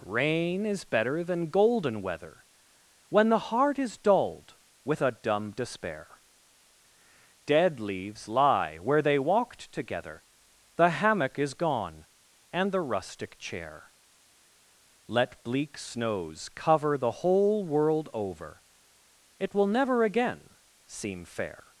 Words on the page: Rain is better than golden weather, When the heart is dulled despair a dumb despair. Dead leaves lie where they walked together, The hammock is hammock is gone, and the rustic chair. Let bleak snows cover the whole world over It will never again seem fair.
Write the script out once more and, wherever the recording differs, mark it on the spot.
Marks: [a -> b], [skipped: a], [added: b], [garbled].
Rain is better than golden weather, When the heart is dulled [despair -> with] a dumb despair. Dead leaves lie where they walked together, The hammock is [skipped: hammock is] gone, and the rustic chair. Let bleak snows cover the whole world over It will never again seem fair.